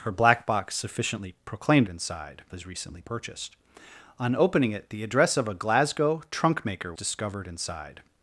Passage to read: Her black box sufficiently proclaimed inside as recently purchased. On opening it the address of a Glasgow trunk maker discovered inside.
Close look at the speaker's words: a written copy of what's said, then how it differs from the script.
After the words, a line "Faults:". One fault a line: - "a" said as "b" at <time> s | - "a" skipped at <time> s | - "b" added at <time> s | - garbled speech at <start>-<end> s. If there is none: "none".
Her black box sufficiently proclaimed inside as recently purchased. On opening it the address of a Glasgow trunk maker discovered inside.
Faults:
none